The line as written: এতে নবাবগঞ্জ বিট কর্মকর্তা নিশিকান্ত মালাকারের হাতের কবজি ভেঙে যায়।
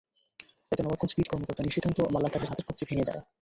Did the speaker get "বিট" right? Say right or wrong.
right